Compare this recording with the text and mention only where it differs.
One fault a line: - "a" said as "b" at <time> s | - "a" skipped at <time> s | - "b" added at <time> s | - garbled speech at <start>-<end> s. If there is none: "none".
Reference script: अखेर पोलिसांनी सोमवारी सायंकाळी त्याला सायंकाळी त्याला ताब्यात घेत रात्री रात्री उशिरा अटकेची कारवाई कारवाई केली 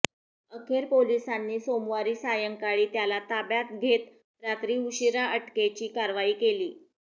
- "सायंकाळी त्याला" skipped at 3.2 s
- "रात्री" skipped at 4.8 s
- "कारवाई" skipped at 6.3 s